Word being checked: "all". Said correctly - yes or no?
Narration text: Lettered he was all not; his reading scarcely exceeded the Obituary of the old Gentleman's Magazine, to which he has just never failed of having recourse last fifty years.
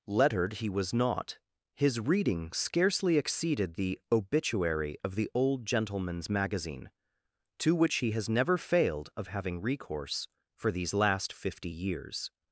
no